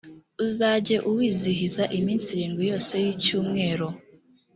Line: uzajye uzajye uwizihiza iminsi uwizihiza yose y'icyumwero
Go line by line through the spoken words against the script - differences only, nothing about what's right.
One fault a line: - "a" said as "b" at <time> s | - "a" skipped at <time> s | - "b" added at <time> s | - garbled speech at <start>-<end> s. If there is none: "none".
- "uzajye" skipped at 0.9 s
- "uwizihiza" said as "irindwi" at 2.3 s